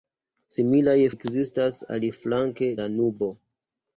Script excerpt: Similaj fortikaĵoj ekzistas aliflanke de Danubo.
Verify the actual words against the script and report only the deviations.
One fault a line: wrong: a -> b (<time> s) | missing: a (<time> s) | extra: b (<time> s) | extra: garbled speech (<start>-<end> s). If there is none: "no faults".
missing: fortikaĵoj (0.9 s)
missing: de (2.7 s)